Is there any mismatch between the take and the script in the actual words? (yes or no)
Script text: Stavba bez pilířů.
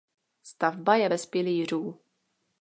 yes